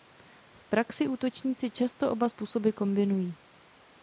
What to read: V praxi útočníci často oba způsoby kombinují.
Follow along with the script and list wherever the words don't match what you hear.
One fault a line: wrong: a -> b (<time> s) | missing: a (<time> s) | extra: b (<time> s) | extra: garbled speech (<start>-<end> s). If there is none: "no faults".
no faults